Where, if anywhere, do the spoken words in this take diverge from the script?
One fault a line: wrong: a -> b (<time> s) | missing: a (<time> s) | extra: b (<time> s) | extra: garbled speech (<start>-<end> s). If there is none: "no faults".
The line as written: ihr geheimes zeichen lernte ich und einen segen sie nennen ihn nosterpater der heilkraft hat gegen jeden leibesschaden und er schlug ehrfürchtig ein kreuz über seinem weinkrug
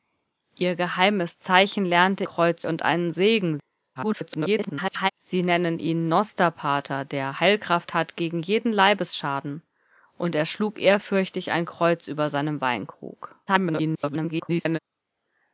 wrong: ich -> kreuz (2.2 s)
extra: garbled speech (4.0-5.1 s)
extra: garbled speech (13.5-14.8 s)